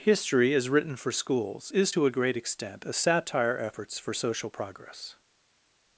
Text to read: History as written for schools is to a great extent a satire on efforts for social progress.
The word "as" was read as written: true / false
true